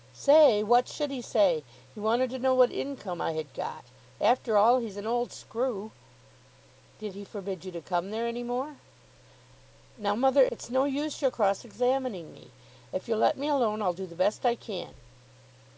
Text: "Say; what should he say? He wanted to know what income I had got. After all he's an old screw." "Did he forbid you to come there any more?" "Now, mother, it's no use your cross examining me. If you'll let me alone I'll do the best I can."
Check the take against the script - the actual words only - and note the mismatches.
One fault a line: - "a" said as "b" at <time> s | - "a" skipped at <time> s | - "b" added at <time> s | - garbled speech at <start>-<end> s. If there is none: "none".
none